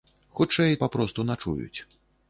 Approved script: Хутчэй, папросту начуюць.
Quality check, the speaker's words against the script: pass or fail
pass